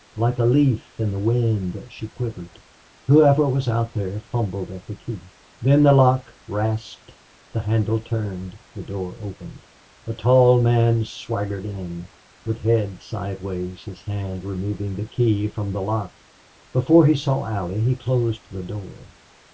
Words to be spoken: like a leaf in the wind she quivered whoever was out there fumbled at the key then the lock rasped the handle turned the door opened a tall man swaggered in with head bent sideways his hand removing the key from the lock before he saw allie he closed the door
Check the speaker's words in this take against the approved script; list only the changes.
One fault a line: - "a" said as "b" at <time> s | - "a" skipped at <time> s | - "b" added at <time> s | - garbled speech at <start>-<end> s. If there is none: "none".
- "bent" skipped at 13.0 s